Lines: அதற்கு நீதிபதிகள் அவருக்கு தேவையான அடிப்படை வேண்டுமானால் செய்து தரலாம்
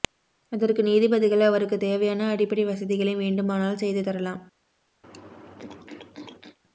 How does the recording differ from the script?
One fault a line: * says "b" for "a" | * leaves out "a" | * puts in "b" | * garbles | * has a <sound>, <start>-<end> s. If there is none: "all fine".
* puts in "வசதிகளை"
* has a throat clearing, 5.0-6.6 s